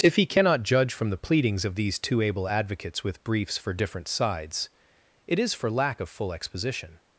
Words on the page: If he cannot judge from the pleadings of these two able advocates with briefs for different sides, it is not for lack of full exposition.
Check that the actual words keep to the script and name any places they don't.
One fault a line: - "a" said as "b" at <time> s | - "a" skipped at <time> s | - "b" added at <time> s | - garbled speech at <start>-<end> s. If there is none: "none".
- "not" skipped at 5.5 s